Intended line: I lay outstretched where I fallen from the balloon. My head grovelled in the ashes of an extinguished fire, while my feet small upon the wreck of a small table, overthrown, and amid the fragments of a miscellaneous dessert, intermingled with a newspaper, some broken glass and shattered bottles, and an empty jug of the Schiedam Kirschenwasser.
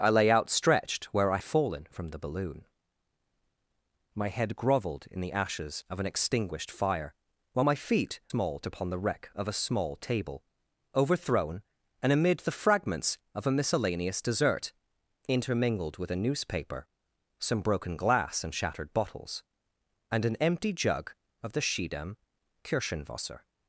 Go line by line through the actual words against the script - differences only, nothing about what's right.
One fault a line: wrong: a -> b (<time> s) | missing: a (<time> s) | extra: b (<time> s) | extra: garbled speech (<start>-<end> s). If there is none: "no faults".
no faults